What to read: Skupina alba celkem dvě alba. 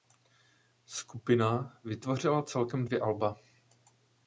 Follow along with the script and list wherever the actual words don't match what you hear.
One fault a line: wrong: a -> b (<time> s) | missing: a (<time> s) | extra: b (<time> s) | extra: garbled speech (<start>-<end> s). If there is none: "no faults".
wrong: alba -> vytvořila (1.8 s)